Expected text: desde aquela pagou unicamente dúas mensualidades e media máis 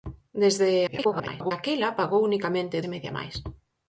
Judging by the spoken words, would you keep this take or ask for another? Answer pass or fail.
fail